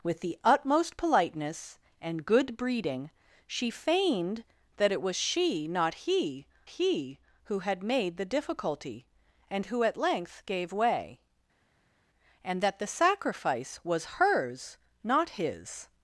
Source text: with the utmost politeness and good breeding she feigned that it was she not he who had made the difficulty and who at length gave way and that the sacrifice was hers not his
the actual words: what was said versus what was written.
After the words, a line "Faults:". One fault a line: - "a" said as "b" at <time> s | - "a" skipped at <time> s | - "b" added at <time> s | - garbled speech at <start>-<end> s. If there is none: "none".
with the utmost politeness and good breeding she feigned that it was she not he he who had made the difficulty and who at length gave way and that the sacrifice was hers not his
Faults:
- "he" added at 6.6 s